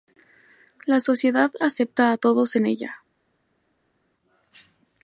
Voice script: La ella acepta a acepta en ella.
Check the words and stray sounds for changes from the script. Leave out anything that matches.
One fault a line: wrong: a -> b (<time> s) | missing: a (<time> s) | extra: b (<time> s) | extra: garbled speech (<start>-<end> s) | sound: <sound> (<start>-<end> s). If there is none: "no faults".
wrong: ella -> sociedad (1.0 s)
wrong: acepta -> todos (2.2 s)